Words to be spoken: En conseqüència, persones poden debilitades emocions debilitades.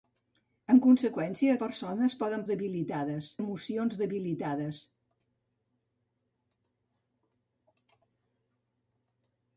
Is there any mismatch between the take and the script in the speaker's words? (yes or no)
no